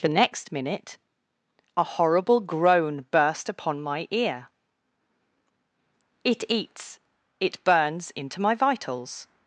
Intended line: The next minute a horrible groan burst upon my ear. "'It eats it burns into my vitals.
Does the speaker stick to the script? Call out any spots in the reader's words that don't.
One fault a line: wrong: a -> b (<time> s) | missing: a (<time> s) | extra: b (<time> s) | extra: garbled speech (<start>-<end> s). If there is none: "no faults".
no faults